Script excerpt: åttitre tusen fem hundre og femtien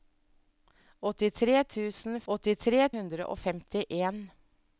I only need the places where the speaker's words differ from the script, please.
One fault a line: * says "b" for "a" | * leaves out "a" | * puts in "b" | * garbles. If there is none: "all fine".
* says "åttitre" for "fem"